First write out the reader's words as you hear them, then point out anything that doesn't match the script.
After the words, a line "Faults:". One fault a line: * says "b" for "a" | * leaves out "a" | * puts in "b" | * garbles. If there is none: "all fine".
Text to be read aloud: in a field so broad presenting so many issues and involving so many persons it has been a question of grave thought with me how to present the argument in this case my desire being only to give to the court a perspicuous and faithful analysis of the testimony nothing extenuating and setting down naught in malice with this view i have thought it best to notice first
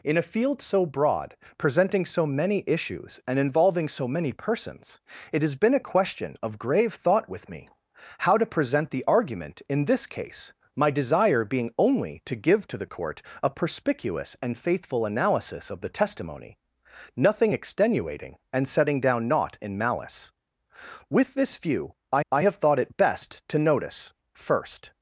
in a field so broad presenting so many issues and involving so many persons it has been a question of grave thought with me how to present the argument in this case my desire being only to give to the court a perspicuous and faithful analysis of the testimony nothing extenuating and setting down naught in malice with this view i i have thought it best to notice first
Faults:
* puts in "i"